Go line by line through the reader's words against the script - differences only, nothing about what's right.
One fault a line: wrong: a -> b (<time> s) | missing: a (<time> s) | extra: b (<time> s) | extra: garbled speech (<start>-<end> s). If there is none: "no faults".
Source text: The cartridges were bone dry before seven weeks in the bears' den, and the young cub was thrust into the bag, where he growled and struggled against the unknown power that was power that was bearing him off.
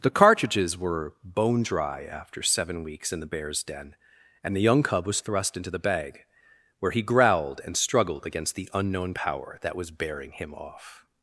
wrong: before -> after (2.0 s)
missing: power that was (9.9 s)